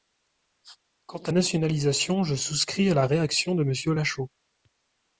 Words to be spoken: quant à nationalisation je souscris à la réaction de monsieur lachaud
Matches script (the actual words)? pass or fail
pass